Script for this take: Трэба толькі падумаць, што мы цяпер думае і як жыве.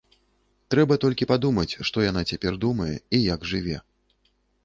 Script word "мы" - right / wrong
wrong